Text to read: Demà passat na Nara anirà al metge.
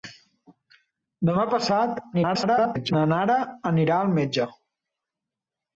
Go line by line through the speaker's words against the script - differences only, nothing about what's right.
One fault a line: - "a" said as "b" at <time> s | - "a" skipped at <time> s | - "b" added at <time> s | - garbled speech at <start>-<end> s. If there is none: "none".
- garbled speech at 2.1-2.9 s